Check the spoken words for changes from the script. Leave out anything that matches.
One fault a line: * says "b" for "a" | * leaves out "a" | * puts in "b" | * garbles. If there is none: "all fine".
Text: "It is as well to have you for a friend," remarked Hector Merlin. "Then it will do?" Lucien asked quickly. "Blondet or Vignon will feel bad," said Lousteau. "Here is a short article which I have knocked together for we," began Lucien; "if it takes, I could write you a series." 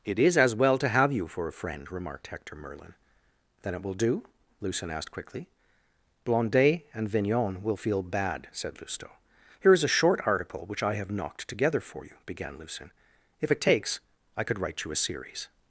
* says "and" for "or"
* says "you" for "we"